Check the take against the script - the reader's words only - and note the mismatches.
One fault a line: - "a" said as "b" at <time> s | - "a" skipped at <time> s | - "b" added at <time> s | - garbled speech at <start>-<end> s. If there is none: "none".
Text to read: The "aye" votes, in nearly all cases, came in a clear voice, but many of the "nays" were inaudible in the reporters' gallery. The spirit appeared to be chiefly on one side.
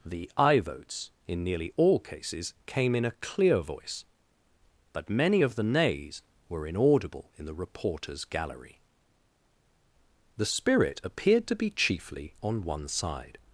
none